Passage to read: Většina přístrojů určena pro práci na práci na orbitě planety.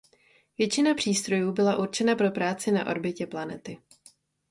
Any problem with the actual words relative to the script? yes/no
yes